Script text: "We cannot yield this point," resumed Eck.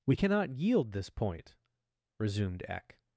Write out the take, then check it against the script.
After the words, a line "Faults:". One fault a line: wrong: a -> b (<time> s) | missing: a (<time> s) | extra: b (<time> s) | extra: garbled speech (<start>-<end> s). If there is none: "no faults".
"We cannot yield this point," resumed Eck.
Faults:
no faults